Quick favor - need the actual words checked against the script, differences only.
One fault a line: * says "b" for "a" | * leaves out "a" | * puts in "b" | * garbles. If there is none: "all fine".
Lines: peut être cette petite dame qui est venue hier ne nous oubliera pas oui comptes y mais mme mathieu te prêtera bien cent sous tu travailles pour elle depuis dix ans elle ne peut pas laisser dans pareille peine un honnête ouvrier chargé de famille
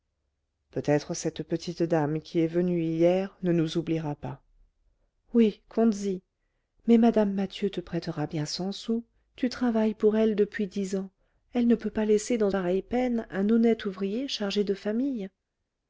all fine